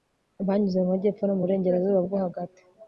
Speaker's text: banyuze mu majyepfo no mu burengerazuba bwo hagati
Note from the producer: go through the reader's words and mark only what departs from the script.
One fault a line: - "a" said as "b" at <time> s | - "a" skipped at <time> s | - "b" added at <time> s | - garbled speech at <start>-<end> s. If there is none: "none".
none